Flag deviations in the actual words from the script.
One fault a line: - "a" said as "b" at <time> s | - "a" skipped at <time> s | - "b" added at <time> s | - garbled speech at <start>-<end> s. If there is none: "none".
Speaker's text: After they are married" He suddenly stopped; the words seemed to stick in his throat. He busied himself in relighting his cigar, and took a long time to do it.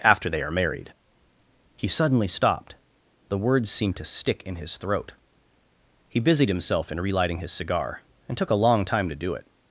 none